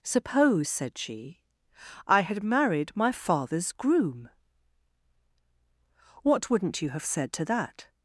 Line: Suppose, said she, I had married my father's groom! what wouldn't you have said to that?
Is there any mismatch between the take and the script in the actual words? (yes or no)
no